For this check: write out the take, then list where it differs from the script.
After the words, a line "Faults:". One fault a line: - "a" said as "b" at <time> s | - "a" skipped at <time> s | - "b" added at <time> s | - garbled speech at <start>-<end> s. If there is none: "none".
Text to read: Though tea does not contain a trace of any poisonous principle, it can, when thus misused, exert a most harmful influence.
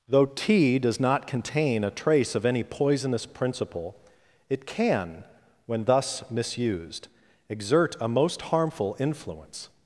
Though tea does not contain a trace of any poisonous principle, it can, when thus misused, exert a most harmful influence.
Faults:
none